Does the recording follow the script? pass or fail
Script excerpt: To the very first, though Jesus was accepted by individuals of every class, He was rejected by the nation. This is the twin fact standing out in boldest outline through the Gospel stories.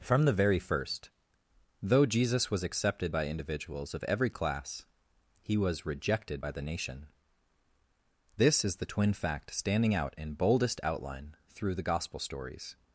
fail